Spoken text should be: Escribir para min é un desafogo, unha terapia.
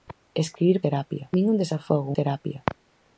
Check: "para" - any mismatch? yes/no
yes